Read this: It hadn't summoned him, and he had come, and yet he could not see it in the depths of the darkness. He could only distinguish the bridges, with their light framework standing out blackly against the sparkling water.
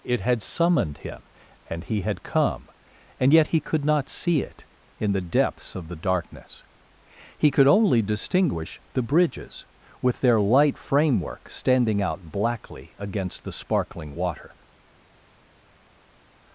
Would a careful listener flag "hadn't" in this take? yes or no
yes